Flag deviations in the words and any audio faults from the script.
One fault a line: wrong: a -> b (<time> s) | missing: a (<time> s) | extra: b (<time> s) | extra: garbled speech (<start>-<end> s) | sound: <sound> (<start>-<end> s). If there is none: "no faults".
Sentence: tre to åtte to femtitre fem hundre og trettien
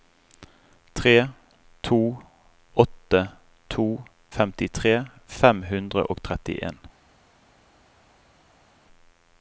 no faults